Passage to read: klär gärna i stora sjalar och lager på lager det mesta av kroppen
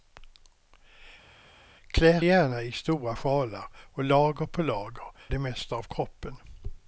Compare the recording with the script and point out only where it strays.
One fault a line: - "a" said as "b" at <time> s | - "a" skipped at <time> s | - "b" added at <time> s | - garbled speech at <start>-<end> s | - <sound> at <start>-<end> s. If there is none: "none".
none